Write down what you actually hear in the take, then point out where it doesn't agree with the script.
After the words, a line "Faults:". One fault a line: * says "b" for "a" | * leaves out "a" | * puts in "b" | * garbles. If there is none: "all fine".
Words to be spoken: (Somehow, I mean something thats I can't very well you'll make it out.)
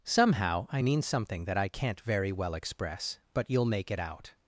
(Somehow, I mean something that I can't very well express, but you'll make it out.)
Faults:
* says "that" for "thats"
* puts in "express but"